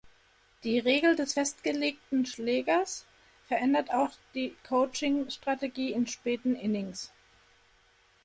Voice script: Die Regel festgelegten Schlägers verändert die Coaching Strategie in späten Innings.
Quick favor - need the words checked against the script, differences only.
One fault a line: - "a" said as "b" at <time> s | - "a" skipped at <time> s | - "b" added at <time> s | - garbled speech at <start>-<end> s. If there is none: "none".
- "des" added at 1.1 s
- "auch" added at 3.9 s